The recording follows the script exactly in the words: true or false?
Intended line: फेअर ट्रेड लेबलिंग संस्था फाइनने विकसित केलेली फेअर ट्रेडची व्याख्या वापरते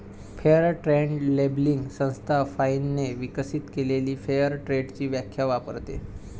true